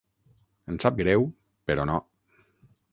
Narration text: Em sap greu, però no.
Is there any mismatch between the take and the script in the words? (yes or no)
no